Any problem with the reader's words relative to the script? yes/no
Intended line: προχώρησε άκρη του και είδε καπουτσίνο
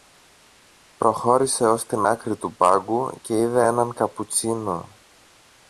yes